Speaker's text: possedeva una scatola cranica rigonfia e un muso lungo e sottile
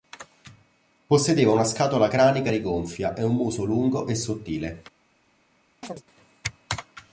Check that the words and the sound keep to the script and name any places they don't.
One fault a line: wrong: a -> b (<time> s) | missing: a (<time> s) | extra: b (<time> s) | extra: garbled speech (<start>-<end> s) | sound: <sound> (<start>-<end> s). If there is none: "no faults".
sound: chirp (5.8-6.0 s)